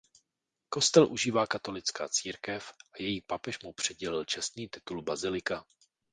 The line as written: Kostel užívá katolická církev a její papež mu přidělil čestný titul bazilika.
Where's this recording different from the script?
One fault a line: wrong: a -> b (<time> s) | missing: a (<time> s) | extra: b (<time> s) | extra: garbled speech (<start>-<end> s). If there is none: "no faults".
no faults